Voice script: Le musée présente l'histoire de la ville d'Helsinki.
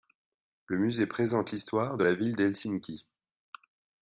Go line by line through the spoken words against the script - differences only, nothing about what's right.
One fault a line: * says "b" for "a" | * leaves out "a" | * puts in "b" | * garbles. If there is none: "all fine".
all fine